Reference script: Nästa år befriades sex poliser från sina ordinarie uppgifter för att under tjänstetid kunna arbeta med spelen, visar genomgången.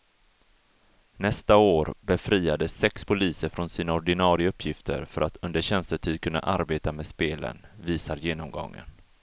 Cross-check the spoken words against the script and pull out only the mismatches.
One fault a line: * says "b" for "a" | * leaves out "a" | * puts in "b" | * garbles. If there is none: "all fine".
all fine